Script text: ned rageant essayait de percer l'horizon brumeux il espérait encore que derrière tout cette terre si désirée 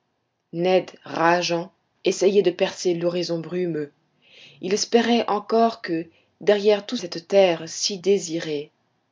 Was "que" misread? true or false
false